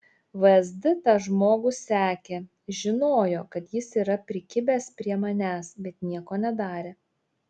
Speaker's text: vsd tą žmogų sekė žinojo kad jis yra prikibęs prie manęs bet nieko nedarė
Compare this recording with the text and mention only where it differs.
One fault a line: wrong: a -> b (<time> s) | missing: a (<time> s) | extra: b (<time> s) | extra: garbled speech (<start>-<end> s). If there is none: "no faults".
no faults